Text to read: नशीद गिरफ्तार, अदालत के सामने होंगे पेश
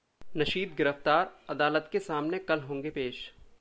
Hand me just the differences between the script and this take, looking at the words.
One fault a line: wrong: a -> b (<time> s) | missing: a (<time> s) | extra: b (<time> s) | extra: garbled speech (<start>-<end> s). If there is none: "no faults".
extra: कल (2.4 s)